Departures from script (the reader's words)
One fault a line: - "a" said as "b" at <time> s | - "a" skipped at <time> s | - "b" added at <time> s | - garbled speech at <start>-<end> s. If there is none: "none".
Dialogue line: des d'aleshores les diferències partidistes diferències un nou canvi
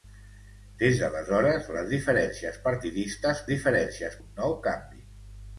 none